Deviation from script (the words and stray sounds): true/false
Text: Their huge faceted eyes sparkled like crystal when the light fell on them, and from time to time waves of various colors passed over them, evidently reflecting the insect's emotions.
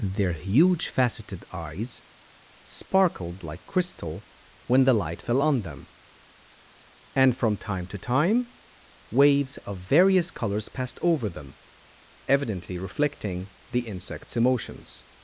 false